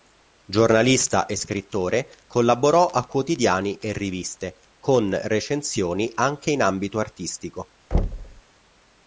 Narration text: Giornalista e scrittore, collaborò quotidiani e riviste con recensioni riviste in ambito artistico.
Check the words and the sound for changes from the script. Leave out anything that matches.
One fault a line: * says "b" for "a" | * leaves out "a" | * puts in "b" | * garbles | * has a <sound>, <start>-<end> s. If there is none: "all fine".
* puts in "a"
* says "anche" for "riviste"
* has a thud, 7.9-8.4 s